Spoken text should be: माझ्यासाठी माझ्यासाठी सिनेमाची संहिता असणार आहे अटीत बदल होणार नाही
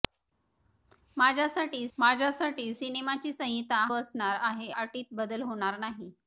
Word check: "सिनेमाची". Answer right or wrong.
right